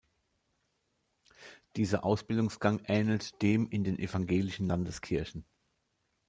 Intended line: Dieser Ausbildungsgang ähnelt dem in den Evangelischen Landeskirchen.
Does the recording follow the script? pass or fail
pass